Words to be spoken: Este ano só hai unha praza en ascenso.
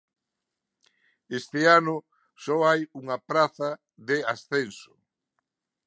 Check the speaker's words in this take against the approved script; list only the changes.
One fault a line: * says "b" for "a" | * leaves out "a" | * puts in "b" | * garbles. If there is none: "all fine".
* says "de" for "en"